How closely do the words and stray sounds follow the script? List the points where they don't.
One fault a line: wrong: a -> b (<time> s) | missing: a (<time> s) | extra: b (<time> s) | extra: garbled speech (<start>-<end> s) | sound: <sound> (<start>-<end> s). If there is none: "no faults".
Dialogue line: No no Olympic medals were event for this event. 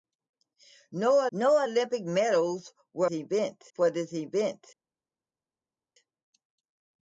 no faults